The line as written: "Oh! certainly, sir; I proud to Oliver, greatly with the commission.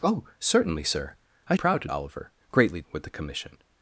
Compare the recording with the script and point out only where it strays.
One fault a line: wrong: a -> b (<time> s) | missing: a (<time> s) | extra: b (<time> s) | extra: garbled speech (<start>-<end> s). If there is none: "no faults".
no faults